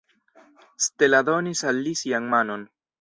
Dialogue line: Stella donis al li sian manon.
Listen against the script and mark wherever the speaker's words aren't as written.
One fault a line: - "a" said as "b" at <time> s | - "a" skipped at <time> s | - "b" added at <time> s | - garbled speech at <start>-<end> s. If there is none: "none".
none